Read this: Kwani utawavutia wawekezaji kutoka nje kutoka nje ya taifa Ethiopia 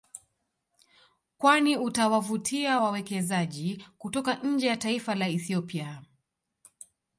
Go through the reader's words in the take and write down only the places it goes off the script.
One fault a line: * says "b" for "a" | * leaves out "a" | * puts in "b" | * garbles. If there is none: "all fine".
* leaves out "kutoka nje"
* puts in "la"